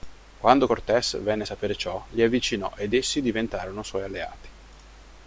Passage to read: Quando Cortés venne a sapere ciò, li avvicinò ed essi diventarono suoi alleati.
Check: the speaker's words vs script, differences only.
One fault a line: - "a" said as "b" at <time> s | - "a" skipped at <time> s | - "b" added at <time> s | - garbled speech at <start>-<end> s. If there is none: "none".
none